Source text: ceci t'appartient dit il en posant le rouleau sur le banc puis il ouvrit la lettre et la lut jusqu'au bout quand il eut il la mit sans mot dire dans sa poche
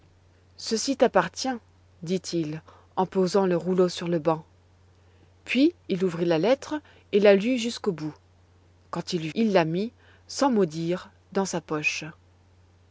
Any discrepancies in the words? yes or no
no